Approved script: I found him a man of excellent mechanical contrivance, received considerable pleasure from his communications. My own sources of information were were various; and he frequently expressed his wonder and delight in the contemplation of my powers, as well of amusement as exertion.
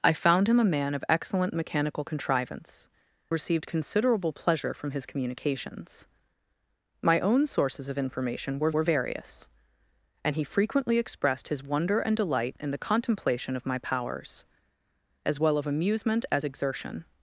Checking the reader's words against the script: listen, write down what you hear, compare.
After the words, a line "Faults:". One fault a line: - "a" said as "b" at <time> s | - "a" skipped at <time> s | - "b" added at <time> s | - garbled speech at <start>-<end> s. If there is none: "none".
I found him a man of excellent mechanical contrivance, received considerable pleasure from his communications. My own sources of information were were various; and he frequently expressed his wonder and delight in the contemplation of my powers, as well of amusement as exertion.
Faults:
none